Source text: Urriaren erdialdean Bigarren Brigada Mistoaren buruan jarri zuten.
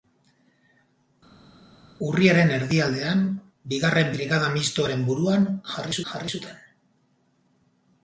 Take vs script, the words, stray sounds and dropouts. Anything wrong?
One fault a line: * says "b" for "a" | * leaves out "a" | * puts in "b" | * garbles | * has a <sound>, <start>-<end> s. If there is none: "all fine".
* puts in "jarri"